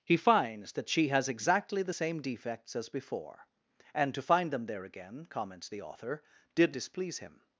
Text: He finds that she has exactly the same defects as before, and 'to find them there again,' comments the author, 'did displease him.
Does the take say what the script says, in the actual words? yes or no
yes